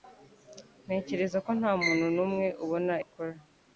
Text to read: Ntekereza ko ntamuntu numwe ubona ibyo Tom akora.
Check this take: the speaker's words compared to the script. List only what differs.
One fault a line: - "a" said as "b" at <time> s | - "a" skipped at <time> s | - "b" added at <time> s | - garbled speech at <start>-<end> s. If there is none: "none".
- "ibyo Tom" skipped at 2.9 s